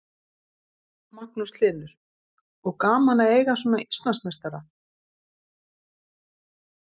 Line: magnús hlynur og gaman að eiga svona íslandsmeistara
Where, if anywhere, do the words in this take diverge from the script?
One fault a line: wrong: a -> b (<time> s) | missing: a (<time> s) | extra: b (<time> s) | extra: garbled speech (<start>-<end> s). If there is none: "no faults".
no faults